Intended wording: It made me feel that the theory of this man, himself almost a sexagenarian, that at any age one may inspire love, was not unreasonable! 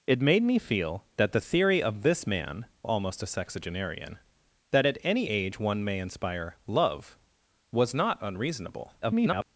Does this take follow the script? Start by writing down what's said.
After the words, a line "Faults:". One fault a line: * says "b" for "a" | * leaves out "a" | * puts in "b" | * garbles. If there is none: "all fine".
It made me feel that the theory of this man, almost a sexagenarian, that at any age one may inspire love, was not unreasonable! [garbled]
Faults:
* leaves out "himself"
* garbles